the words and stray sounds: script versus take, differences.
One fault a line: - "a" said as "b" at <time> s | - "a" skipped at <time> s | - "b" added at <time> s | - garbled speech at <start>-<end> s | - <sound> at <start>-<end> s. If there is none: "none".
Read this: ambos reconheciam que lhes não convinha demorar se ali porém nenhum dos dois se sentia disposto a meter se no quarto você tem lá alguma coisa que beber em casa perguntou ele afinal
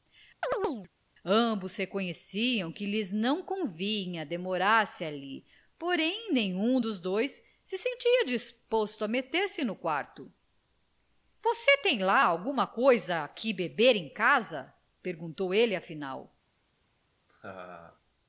- chirp at 0.4-0.9 s
- laugh at 17.3-18.0 s